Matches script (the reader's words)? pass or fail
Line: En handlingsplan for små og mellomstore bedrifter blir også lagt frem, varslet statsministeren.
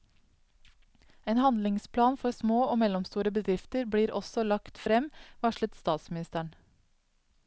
pass